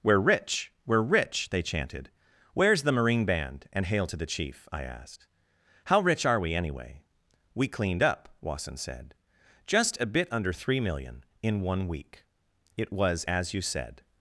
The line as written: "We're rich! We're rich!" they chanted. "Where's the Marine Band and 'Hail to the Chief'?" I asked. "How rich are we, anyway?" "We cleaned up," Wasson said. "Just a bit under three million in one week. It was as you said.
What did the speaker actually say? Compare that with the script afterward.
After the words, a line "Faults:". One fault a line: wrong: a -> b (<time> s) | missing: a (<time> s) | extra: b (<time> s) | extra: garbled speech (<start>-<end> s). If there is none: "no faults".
"We're rich! We're rich!" they chanted. "Where's the Marine Band and 'Hail to the Chief'?" I asked. "How rich are we, anyway?" "We cleaned up," Wasson said. "Just a bit under three million in one week. It was as you said.
Faults:
no faults